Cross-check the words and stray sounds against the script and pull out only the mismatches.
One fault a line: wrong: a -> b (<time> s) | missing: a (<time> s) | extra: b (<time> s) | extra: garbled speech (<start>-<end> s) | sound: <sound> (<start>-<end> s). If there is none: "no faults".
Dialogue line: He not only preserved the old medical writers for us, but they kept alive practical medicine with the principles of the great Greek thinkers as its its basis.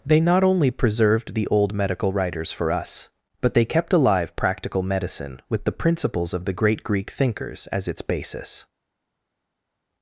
wrong: He -> They (0.0 s)
missing: its (8.0 s)